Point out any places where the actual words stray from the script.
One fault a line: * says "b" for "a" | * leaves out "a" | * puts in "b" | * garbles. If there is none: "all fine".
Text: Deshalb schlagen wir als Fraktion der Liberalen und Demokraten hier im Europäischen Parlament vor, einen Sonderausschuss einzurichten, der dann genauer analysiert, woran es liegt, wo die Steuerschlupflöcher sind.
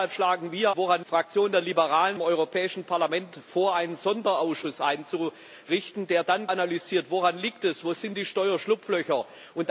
* says "woran" for "als"
* leaves out "und Demokraten hier"
* leaves out "genauer"